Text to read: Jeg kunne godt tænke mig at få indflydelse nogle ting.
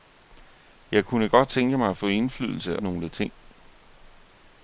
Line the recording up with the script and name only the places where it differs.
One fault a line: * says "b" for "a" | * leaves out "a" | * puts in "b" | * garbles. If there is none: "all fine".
all fine